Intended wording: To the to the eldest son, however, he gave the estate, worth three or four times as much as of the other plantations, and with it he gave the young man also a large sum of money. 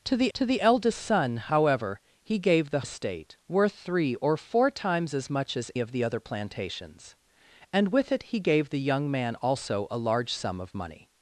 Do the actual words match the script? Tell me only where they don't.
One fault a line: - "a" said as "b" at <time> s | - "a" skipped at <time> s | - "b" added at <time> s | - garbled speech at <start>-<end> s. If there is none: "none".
none